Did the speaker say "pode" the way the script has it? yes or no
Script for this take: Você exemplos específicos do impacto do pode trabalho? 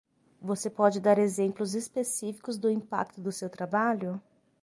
no